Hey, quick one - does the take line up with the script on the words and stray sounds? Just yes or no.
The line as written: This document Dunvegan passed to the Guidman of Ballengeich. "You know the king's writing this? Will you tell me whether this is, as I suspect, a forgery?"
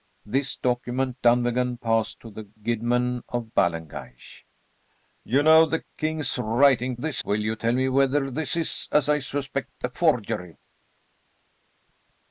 yes